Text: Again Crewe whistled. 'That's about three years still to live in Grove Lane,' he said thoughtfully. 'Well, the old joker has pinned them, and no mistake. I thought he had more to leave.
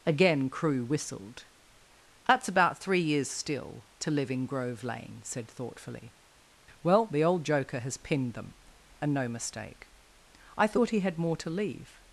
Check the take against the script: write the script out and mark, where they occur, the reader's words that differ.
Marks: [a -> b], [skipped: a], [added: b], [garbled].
Again Crewe whistled. 'That's about three years still to live in Grove Lane,' [skipped: he] said thoughtfully. 'Well, the old joker has pinned them, and no mistake. I thought he had more to leave.